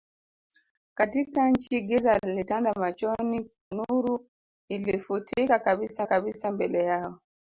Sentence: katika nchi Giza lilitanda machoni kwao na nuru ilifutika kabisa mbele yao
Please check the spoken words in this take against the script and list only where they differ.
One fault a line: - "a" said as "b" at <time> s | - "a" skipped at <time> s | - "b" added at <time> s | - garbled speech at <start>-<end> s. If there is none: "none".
- "kwao na" skipped at 3.5 s
- "kabisa" added at 6.0 s